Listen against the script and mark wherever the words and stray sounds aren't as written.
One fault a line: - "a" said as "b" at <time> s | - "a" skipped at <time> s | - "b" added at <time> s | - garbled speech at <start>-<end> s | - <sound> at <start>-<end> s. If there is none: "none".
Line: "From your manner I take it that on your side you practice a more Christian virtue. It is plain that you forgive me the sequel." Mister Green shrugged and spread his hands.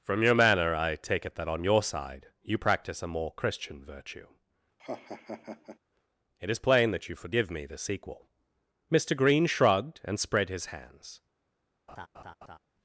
- laugh at 4.8-5.8 s
- laugh at 11.9-12.6 s